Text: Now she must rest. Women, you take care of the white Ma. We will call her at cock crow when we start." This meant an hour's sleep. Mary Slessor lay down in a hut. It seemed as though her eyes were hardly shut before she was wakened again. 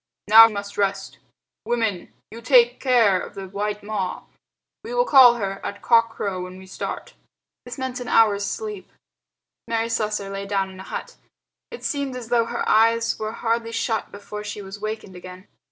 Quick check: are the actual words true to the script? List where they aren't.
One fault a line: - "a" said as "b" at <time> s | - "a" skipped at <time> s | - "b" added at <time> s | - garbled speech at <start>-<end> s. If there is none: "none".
- "she" skipped at 0.5 s